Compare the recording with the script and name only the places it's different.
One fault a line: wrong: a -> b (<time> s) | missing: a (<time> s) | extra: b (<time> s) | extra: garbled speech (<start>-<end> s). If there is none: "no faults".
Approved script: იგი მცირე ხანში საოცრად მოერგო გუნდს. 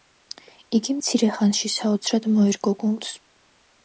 no faults